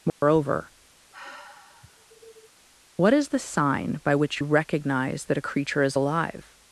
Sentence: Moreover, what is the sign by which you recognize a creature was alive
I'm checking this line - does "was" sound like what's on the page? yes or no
no